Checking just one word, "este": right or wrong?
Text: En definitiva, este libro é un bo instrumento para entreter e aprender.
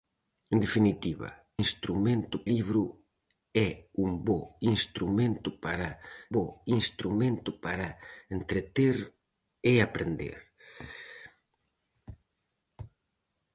wrong